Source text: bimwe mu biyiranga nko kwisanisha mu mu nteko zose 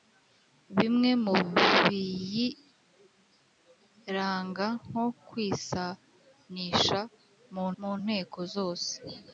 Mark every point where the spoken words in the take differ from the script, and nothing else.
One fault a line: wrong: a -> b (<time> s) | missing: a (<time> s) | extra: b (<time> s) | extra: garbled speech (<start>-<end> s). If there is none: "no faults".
no faults